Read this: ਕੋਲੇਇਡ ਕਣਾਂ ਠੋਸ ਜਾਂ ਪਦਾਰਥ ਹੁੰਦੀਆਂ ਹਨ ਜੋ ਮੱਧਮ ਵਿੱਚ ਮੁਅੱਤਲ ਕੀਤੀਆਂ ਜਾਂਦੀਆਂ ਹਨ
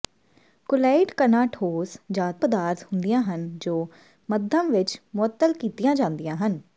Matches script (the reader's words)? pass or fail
pass